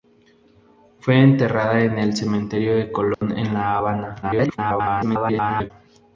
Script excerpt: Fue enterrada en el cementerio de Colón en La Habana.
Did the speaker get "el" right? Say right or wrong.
right